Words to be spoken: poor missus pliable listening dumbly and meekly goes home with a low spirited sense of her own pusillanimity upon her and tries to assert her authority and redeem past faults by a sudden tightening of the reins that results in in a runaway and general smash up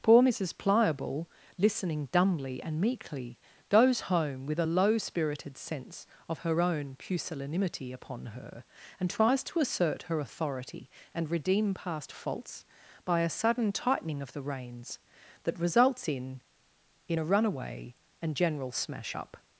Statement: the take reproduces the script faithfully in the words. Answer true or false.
true